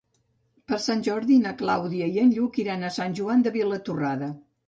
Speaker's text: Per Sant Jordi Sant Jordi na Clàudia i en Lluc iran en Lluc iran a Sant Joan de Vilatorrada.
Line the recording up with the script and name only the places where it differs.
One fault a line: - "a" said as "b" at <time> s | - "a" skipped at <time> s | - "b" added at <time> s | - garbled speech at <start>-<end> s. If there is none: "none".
- "Sant Jordi" skipped at 1.4 s
- "en Lluc iran" skipped at 2.9 s